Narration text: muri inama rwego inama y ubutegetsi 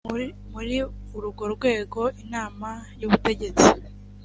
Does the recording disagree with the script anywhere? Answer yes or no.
yes